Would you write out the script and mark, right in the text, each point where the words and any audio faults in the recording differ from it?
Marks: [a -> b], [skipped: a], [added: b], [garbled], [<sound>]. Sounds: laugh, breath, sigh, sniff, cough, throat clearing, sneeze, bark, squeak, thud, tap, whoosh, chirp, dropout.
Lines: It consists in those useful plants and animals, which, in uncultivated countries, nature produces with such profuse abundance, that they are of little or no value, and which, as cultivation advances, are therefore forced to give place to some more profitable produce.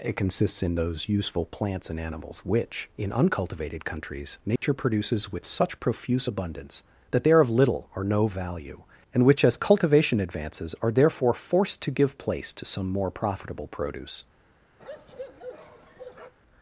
It consists in those useful plants and animals, which, in uncultivated countries, nature [dropout] produces with such profuse abundance, that they are of little or no value, and which, as cultivation advances, are therefore forced to give place to some more profitable produce. [bark]